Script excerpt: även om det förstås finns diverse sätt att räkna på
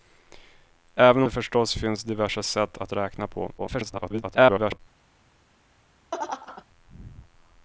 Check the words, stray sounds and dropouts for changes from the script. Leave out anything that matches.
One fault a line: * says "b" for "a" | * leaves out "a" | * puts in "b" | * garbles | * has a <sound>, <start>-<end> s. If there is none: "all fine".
* leaves out "om"
* garbles
* has a laugh, 6.1-6.6 s